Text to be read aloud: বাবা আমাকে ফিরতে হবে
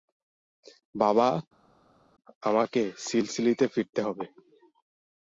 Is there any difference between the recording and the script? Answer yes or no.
yes